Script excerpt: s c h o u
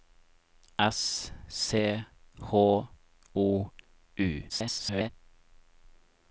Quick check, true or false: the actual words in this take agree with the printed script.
false